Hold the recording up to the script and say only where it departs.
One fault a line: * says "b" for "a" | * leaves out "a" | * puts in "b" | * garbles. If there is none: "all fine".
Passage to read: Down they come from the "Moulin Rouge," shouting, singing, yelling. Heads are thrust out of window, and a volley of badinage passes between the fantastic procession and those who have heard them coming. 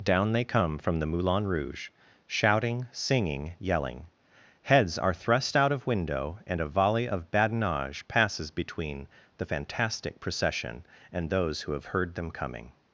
all fine